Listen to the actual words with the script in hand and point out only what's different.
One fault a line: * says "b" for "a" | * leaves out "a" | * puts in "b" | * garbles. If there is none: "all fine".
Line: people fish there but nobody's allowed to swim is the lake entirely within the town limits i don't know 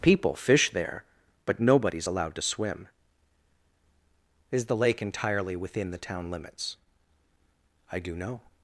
* says "do" for "don't"